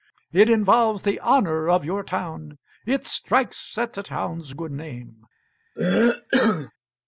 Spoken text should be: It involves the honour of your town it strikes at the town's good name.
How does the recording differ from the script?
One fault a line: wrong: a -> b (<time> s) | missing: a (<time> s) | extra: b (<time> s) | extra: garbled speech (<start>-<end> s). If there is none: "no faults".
no faults